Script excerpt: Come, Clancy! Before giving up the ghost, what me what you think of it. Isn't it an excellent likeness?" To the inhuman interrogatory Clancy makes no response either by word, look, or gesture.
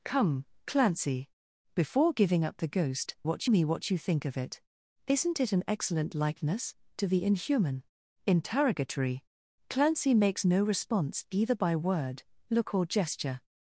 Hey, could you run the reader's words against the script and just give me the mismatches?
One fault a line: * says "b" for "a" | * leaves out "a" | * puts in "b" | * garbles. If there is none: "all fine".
all fine